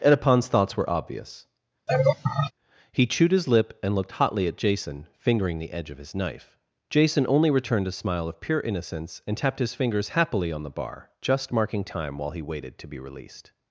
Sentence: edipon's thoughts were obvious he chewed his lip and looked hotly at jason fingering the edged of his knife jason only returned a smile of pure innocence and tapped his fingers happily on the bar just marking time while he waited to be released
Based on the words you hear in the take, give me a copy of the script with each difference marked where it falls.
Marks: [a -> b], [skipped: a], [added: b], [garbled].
edipon's thoughts were obvious he chewed his lip and looked hotly at jason fingering the [edged -> edge] of his knife jason only returned a smile of pure innocence and tapped his fingers happily on the bar just marking time while he waited to be released